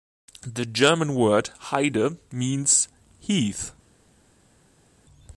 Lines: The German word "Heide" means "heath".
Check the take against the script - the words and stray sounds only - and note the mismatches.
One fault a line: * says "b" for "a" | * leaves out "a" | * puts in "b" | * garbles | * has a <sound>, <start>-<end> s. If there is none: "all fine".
all fine